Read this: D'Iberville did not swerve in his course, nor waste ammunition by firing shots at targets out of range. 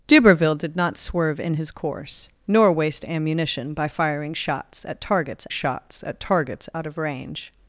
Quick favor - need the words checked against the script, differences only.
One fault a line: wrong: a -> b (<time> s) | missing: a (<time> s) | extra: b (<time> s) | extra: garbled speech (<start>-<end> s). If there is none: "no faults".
extra: shots at targets (5.5 s)